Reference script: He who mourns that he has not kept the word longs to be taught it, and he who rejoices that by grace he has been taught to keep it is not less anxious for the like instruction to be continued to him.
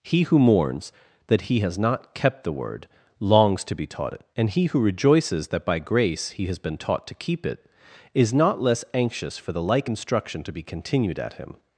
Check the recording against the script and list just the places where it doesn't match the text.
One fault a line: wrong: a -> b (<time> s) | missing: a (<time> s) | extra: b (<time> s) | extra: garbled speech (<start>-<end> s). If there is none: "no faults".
wrong: to -> at (11.2 s)